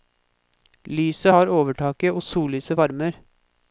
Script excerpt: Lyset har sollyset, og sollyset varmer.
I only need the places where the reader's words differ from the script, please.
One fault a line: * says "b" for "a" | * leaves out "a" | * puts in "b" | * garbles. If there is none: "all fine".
* says "overtaket" for "sollyset"